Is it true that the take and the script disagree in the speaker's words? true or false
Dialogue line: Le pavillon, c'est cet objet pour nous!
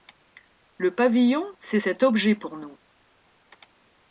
false